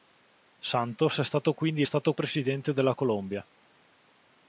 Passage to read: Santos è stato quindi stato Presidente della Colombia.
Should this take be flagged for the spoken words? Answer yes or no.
no